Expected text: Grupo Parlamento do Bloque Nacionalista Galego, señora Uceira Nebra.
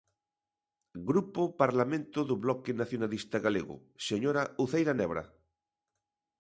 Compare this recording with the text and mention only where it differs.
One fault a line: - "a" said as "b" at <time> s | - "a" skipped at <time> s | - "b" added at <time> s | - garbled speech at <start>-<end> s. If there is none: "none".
none